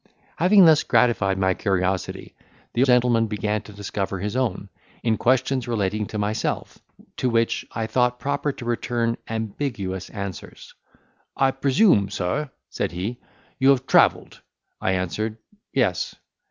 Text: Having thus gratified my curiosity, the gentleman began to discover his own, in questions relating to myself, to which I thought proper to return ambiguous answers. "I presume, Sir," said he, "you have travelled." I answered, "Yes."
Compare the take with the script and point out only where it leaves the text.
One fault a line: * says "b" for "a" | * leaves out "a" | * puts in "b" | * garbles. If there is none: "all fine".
all fine